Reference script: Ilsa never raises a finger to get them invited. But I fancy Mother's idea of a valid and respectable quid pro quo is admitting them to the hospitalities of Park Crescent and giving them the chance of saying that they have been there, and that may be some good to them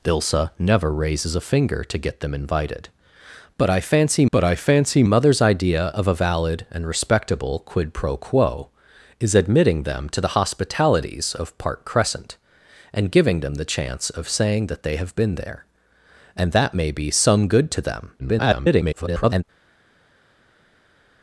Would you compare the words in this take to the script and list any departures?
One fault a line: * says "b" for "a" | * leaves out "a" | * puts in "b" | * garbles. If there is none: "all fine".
* puts in "but I fancy"
* garbles